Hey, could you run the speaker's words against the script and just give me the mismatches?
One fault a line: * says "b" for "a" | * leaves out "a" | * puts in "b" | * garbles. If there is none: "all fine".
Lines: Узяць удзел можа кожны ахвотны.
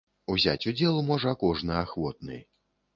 all fine